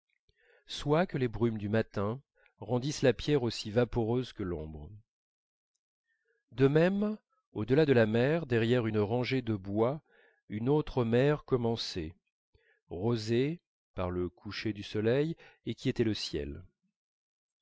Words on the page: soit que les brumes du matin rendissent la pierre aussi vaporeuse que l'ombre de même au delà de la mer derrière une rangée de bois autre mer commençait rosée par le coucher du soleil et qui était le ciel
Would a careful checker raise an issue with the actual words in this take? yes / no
yes